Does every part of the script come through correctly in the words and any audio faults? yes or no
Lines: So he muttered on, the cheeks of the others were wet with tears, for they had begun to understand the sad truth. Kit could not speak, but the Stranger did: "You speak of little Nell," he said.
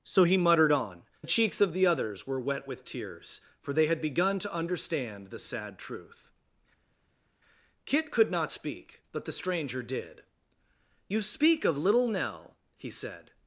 yes